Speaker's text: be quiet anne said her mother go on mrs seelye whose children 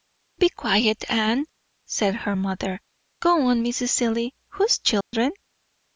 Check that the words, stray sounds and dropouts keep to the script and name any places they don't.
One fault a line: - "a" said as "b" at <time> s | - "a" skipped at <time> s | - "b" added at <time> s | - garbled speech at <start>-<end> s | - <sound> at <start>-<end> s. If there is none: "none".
- dropout at 5.0-5.1 s